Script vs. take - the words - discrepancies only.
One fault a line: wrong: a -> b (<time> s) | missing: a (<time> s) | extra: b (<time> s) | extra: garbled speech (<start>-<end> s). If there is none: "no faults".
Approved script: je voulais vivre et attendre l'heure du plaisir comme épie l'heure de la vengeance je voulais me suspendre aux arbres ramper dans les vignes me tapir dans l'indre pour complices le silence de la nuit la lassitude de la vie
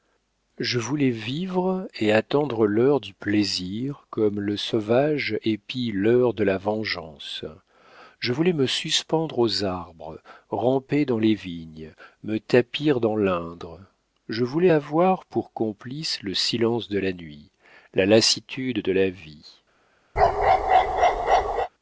extra: le sauvage (4.4 s)
extra: je voulais avoir (14.3 s)